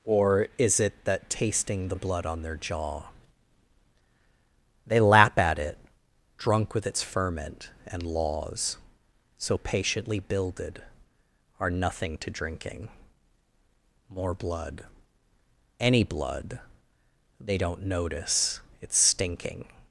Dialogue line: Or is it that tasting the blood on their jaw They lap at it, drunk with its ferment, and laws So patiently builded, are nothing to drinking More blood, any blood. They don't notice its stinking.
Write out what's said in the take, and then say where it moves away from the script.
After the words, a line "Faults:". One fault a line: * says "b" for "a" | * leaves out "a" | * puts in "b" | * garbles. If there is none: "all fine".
Or is it that tasting the blood on their jaw They lap at it, drunk with its ferment, and laws So patiently builded, are nothing to drinking More blood, any blood. They don't notice its stinking.
Faults:
all fine